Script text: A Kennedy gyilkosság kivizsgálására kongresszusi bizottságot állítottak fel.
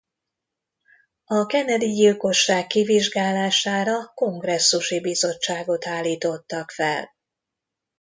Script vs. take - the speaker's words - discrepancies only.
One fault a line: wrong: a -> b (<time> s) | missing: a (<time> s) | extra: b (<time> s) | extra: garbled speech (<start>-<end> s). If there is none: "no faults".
no faults